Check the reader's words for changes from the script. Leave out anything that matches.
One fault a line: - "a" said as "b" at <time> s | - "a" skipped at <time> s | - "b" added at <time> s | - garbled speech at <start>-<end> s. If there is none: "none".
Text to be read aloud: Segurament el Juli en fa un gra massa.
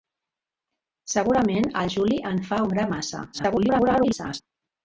- garbled speech at 3.3-4.4 s